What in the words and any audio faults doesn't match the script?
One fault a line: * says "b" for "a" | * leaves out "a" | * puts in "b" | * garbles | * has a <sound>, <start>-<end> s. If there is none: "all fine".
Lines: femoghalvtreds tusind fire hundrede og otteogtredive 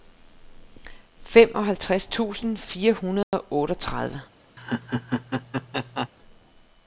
* has a dropout, 3.2-3.3 s
* has a laugh, 4.6-6.1 s